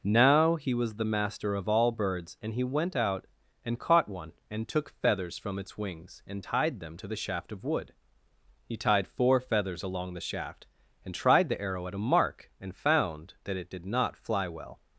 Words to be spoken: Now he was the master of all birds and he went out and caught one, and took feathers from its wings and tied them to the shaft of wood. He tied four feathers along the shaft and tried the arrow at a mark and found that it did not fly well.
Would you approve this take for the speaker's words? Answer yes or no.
yes